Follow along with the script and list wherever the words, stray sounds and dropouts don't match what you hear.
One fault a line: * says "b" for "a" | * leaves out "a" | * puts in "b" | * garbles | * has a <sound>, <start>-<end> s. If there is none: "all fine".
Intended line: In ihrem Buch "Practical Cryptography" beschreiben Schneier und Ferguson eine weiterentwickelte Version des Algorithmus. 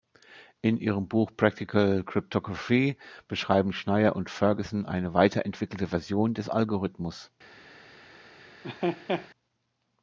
* has a laugh, 8.6-9.3 s